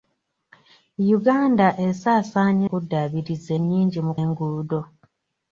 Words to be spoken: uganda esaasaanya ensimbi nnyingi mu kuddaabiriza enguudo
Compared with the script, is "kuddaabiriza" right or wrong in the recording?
wrong